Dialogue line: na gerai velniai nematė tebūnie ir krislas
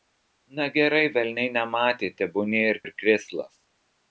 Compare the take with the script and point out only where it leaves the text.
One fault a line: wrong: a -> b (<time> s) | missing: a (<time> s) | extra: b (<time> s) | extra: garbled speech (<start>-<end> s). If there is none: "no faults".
extra: ir (2.9 s)